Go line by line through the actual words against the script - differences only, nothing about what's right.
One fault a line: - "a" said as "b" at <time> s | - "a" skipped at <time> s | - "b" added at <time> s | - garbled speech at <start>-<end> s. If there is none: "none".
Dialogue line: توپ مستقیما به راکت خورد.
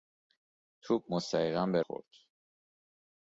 - "راکت" skipped at 1.8 s